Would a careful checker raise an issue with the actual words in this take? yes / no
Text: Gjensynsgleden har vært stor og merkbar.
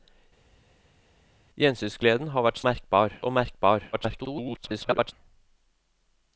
yes